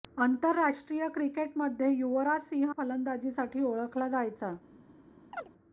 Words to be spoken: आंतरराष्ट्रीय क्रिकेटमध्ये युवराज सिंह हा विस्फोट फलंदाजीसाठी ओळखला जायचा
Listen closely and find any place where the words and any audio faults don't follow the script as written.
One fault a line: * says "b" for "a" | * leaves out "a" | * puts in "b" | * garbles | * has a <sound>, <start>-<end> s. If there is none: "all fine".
* leaves out "हा विस्फोट"
* has a chirp, 5.3-5.5 s